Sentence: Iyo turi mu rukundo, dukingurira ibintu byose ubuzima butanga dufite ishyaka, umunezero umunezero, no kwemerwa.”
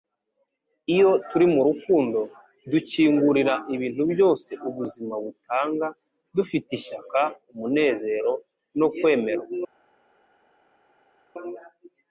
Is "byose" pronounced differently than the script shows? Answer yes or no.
no